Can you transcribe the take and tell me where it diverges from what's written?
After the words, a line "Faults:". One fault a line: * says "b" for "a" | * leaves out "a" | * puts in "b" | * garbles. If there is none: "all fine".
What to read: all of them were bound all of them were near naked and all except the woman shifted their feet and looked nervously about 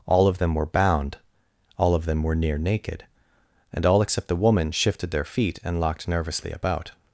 all of them were bound all of them were near naked and all except the woman shifted their feet and locked nervously about
Faults:
* says "locked" for "looked"